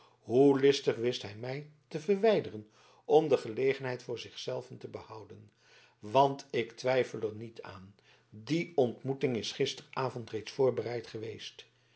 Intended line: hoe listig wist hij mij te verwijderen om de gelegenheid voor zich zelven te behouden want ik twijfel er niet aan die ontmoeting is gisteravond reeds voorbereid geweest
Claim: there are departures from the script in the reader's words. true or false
false